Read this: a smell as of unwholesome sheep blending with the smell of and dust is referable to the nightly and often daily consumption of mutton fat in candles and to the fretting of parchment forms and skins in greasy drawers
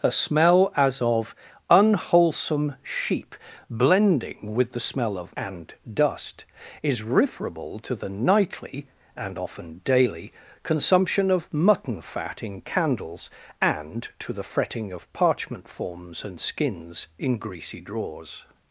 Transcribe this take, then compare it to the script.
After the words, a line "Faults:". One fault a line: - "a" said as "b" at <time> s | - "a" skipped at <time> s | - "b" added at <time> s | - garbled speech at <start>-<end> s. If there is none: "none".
a smell as of unwholesome sheep blending with the smell of and dust is referable to the nightly and often daily consumption of mutton fat in candles and to the fretting of parchment forms and skins in greasy drawers
Faults:
none